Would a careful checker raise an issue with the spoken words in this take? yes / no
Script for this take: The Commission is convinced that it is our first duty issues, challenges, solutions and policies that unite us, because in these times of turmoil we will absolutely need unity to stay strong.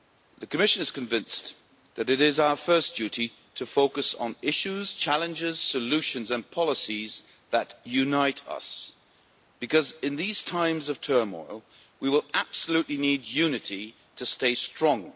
yes